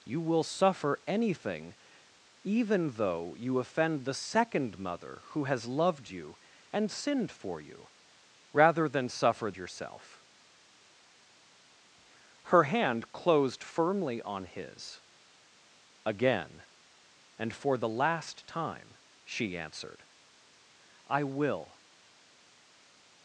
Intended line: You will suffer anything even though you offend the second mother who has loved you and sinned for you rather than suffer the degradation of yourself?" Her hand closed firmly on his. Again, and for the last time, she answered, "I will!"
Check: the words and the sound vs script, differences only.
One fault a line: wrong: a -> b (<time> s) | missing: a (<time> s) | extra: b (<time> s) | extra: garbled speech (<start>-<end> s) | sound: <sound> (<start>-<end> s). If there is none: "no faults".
missing: the degradation of (9.5 s)